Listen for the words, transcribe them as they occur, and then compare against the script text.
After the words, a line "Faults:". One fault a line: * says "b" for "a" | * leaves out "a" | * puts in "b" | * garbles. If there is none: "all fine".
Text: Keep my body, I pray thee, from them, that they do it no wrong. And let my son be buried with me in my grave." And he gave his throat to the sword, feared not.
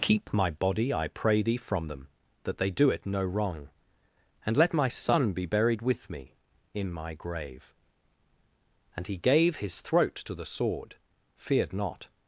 Keep my body, I pray thee, from them, that they do it no wrong. And let my son be buried with me in my grave." And he gave his throat to the sword, feared not.
Faults:
all fine